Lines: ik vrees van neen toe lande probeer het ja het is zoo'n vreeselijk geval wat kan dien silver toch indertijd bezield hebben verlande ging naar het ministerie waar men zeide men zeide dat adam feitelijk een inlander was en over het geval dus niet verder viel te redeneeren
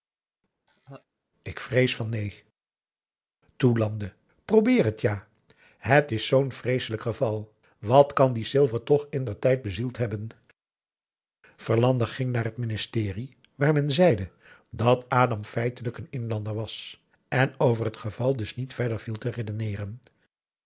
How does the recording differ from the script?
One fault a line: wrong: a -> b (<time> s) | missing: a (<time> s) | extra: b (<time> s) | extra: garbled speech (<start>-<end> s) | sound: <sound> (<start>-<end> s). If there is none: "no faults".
sound: laugh (0.7-1.1 s)
missing: men zeide (14.3 s)